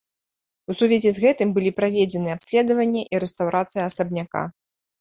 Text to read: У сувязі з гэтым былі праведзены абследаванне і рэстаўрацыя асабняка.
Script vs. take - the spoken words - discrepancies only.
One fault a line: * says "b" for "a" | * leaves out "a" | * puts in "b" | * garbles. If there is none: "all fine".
all fine